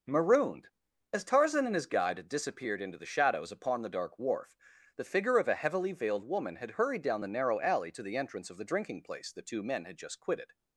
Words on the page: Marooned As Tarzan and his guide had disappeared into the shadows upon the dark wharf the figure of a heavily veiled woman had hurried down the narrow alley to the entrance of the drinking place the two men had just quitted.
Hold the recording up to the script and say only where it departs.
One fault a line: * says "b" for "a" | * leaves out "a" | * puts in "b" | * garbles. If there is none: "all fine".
all fine